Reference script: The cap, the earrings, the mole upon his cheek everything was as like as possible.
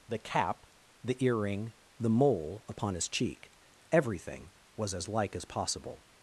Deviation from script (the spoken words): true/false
true